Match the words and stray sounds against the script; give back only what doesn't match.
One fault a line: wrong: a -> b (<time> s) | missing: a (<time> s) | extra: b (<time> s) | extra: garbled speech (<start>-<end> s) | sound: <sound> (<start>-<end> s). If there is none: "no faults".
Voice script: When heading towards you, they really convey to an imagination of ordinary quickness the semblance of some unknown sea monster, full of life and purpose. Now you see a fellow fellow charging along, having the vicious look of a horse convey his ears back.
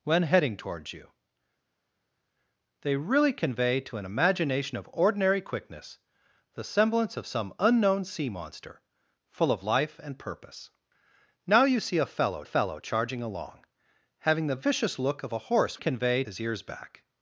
no faults